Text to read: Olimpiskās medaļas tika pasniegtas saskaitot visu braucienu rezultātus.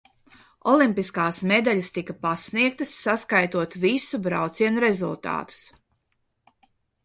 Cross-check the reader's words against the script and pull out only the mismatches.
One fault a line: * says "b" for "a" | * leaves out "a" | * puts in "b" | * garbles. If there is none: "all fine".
all fine